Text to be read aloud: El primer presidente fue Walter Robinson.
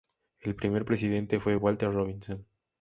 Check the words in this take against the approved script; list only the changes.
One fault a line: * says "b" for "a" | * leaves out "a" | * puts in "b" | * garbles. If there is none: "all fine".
all fine